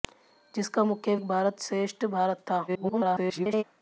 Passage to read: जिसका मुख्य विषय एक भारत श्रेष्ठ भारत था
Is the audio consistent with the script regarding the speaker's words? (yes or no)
no